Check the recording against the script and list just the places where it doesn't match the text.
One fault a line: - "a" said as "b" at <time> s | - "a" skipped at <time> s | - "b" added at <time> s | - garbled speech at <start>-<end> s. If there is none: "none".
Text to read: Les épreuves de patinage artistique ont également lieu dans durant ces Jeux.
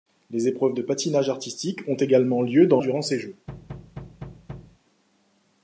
none